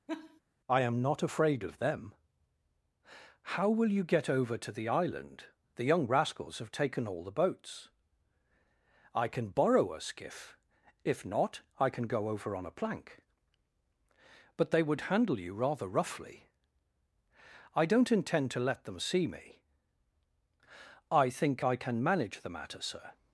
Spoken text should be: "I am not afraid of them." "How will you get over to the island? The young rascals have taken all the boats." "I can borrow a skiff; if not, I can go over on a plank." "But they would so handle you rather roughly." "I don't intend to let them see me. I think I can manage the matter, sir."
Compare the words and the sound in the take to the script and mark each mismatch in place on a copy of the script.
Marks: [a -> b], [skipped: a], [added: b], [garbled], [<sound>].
[laugh] "I am not afraid of them." "How will you get over to the island? The young rascals have taken all the boats." "I can borrow a skiff; if not, I can go over on a plank." "But they would [skipped: so] handle you rather roughly." "I don't intend to let them see me. I think I can manage the matter, sir."